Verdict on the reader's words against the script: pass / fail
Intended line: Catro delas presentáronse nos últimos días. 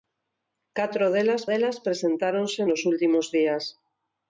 fail